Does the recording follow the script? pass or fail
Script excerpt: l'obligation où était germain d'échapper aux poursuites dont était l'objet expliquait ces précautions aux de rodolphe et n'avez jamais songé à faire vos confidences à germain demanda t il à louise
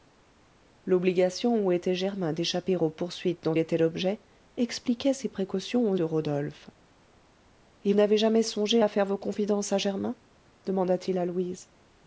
pass